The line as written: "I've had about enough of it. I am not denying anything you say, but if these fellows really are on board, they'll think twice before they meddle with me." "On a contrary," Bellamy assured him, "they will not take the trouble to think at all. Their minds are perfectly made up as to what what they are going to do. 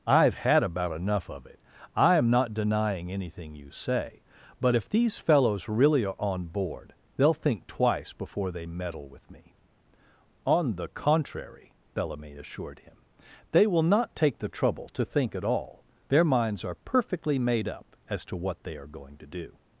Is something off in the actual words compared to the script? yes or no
yes